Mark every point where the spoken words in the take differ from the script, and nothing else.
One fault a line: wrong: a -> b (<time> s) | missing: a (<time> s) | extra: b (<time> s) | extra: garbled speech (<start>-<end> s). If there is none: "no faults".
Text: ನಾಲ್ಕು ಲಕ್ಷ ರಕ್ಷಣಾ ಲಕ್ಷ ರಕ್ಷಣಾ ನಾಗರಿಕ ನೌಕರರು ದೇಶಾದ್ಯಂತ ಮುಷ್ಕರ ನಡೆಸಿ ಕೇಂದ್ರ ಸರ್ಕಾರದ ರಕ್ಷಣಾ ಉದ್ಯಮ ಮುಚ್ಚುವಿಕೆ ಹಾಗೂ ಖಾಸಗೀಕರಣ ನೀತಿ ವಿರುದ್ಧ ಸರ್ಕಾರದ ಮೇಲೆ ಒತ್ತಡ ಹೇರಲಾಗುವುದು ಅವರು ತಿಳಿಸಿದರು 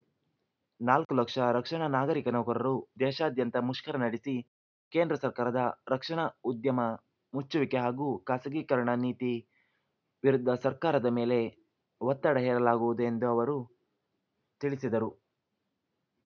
missing: ಲಕ್ಷ ರಕ್ಷಣಾ (1.9 s)
extra: ಎಂದು (13.0 s)